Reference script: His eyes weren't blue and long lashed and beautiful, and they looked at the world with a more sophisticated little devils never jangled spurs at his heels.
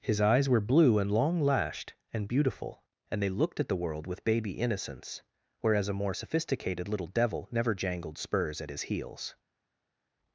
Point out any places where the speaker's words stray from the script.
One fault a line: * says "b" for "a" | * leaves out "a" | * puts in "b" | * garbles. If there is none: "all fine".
* says "were" for "weren't"
* puts in "baby innocence whereas"
* says "devil" for "devils"